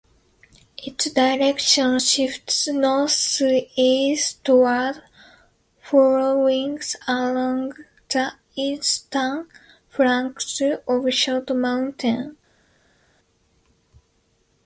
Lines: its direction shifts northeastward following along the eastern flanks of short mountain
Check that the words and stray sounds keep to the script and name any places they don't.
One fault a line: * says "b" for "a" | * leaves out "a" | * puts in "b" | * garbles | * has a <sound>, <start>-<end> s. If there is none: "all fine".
all fine